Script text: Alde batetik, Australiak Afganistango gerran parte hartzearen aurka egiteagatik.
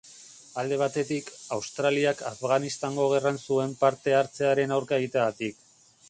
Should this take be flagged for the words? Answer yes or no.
yes